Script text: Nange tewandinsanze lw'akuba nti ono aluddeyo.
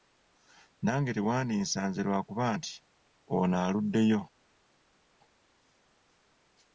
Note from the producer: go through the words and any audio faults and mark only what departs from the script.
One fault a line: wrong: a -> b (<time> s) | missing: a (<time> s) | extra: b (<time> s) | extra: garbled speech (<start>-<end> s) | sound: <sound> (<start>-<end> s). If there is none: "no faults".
no faults